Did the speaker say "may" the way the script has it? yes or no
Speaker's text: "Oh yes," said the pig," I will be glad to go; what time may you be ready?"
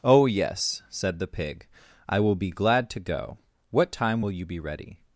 no